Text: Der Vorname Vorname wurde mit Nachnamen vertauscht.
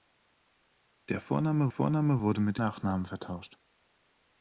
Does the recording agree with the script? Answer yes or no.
yes